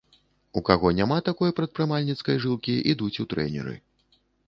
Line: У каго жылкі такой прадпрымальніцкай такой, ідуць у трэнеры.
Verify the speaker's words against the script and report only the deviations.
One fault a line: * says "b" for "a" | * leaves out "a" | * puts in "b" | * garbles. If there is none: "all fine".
* says "няма" for "жылкі"
* says "жылкі" for "такой"